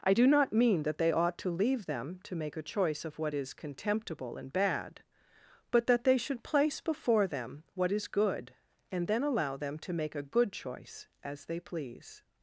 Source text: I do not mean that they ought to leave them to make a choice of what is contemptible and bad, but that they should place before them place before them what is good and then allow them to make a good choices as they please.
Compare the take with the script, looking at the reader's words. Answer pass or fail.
fail